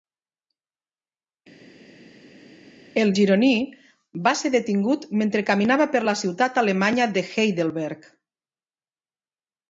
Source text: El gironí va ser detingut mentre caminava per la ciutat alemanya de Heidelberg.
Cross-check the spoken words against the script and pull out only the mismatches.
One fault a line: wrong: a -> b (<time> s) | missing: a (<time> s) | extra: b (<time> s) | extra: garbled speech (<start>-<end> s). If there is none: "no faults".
no faults